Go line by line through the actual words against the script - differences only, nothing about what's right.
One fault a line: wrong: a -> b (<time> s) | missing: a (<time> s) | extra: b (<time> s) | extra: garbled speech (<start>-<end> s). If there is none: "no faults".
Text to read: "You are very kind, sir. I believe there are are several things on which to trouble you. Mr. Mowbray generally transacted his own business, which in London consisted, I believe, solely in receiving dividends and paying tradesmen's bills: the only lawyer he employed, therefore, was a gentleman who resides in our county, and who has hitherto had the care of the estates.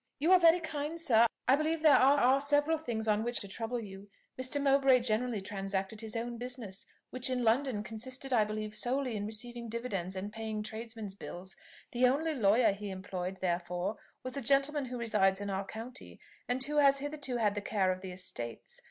no faults